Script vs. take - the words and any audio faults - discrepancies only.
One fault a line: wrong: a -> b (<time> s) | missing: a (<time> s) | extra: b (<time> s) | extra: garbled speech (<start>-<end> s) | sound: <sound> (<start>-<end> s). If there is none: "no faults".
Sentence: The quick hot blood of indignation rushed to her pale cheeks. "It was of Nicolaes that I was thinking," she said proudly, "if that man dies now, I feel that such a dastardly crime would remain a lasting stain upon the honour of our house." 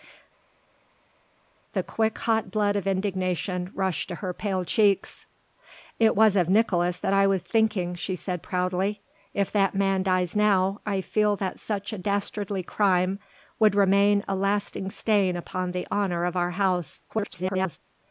extra: garbled speech (17.1-17.8 s)